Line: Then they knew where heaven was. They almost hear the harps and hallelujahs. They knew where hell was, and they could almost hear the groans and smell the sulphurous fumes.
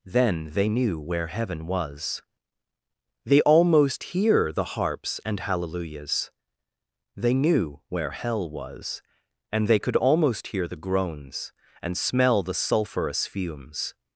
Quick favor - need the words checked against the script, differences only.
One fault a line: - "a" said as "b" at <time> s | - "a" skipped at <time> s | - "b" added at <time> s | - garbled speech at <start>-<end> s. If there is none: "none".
none